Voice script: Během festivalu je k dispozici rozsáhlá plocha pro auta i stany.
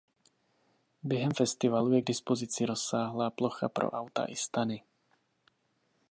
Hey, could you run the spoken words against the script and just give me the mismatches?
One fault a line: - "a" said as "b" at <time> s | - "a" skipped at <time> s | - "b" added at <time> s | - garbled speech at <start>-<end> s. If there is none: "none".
none